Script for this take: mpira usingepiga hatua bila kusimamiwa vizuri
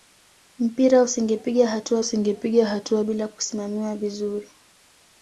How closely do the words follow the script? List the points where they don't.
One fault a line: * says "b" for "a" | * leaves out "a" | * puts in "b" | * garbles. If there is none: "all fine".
* puts in "usingepiga hatua"